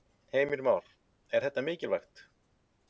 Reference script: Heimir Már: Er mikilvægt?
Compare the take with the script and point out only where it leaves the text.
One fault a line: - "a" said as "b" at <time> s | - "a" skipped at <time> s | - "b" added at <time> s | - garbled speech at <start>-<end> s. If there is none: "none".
- "þetta" added at 1.5 s